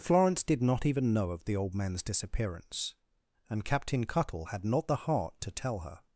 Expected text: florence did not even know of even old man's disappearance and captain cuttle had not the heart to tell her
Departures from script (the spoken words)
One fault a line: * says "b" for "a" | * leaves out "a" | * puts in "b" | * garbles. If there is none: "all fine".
* says "the" for "even"